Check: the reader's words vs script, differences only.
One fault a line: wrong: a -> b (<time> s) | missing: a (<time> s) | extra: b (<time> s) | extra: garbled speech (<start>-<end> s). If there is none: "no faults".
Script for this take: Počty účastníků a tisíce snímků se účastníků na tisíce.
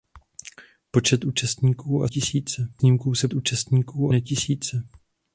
no faults